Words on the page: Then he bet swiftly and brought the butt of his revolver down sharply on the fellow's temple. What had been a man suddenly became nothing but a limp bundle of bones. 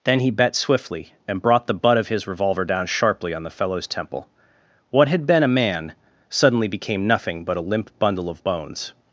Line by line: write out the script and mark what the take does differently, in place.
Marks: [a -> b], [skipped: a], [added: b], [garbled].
Then he bet swiftly and brought the butt of his revolver down sharply on the fellow's temple. What had been a man suddenly became nothing but a limp bundle of bones.